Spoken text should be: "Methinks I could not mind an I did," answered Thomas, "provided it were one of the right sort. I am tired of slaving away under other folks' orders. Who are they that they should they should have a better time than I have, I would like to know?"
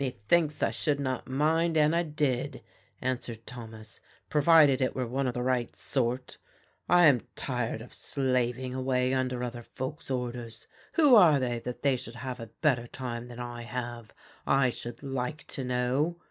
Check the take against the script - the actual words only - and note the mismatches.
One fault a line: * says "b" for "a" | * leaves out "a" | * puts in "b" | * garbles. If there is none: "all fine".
* says "should" for "could"
* leaves out "they should"
* says "should" for "would"